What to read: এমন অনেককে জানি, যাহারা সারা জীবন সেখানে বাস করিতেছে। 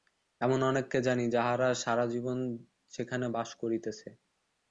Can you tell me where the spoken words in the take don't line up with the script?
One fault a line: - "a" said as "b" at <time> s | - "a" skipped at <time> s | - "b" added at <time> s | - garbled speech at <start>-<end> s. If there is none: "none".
none